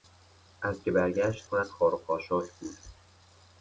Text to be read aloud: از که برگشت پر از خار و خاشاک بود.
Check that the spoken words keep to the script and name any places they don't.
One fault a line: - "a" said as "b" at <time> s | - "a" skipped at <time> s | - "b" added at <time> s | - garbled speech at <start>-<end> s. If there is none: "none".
none